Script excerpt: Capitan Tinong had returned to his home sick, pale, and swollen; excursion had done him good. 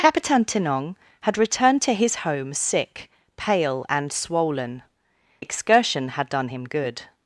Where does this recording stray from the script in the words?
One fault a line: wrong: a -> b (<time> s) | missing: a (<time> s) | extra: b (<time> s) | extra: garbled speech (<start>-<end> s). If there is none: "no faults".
no faults